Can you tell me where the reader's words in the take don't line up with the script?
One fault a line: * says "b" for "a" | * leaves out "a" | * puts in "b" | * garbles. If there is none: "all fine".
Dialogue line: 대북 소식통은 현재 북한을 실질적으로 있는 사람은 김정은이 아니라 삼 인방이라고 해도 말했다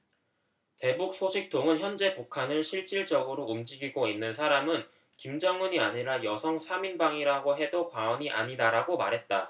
* puts in "움직이고"
* puts in "여성"
* puts in "과언이 아니다라고"